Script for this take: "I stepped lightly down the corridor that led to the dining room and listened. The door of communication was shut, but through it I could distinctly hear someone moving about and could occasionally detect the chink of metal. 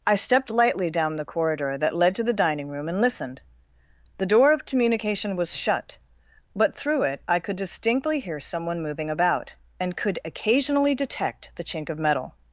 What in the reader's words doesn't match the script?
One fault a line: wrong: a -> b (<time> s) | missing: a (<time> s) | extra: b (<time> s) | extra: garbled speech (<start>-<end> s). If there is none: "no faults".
no faults